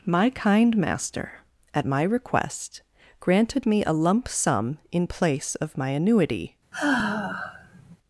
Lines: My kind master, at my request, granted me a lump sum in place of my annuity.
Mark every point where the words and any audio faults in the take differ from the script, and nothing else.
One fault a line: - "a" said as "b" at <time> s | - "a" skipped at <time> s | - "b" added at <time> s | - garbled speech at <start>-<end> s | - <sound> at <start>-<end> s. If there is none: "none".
- sigh at 6.7-8.0 s